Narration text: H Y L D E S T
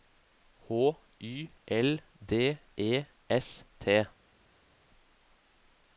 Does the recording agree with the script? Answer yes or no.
yes